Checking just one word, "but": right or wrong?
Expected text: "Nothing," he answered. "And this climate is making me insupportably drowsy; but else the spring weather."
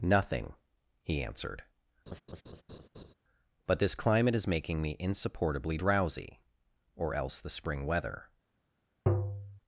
wrong